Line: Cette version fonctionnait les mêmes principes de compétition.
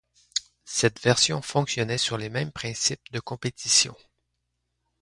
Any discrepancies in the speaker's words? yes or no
yes